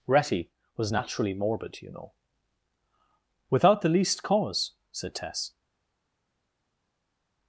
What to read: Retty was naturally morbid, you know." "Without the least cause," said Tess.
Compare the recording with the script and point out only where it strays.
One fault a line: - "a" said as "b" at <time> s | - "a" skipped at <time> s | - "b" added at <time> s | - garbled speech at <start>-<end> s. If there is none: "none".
none